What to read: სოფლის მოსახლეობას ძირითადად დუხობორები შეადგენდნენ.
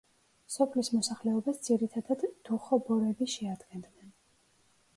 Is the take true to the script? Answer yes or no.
yes